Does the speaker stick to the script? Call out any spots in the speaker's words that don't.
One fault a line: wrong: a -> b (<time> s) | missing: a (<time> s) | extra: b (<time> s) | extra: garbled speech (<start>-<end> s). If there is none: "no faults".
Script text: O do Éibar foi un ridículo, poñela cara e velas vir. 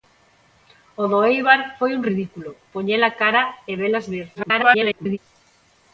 extra: garbled speech (4.3-5.2 s)